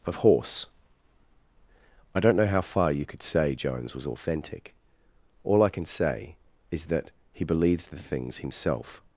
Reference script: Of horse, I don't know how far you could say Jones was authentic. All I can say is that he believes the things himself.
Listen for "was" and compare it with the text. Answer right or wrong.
right